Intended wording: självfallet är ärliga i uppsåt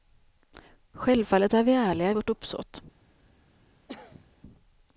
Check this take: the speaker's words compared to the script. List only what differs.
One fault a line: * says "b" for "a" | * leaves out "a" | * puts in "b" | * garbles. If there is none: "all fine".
* puts in "vi"
* puts in "vårt"